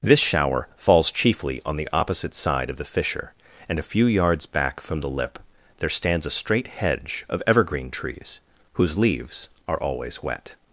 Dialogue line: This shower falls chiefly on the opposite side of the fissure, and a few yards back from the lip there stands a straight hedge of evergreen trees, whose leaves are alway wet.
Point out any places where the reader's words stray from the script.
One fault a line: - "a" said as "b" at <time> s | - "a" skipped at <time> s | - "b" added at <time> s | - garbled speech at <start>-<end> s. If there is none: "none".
- "alway" said as "always" at 9.8 s